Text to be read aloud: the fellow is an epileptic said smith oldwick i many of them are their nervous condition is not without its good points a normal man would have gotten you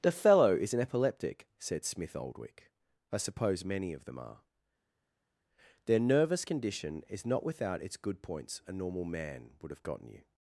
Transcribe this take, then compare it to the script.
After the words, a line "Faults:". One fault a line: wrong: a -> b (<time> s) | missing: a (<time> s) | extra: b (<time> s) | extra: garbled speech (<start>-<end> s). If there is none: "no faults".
the fellow is an epileptic said smith oldwick i suppose many of them are their nervous condition is not without its good points a normal man would have gotten you
Faults:
extra: suppose (3.2 s)